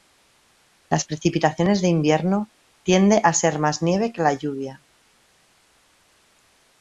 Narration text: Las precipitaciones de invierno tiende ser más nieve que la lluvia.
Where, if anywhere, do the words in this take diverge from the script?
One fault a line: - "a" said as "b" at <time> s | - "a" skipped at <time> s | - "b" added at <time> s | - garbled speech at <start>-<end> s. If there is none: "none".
- "a" added at 3.2 s